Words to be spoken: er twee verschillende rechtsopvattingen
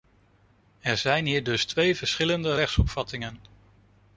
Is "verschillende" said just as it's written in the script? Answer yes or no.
yes